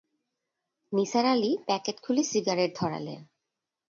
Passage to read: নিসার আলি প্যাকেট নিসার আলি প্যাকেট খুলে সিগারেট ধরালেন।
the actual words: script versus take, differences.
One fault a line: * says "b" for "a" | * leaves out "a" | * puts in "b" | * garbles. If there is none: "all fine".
* leaves out "নিসার আলি প্যাকেট"